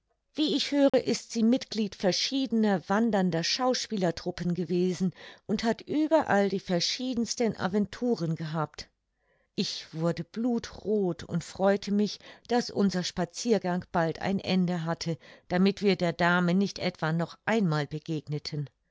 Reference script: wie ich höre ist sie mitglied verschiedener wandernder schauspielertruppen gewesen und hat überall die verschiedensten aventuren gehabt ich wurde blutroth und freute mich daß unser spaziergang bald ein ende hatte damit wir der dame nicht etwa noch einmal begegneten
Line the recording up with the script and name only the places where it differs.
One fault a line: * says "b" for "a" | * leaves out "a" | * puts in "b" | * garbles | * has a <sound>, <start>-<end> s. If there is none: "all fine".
* has a dropout, 0.9-0.9 s